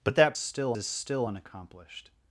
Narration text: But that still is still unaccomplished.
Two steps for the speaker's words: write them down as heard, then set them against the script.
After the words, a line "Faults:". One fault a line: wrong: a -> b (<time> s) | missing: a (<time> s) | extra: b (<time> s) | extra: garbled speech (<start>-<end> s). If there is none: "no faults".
But that still is still unaccomplished.
Faults:
no faults